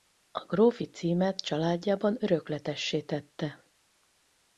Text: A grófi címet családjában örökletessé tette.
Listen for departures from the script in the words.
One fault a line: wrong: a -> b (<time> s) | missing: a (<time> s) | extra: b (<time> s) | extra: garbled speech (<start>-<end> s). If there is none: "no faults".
no faults